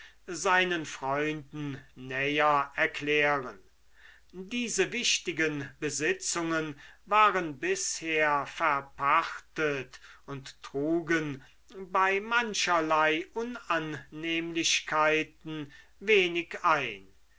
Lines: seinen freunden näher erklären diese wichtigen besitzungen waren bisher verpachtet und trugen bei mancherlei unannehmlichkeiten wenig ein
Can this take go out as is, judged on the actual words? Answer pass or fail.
pass